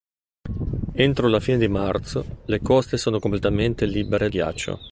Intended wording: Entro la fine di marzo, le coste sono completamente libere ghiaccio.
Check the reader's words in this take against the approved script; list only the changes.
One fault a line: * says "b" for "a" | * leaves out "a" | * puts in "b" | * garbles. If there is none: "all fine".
all fine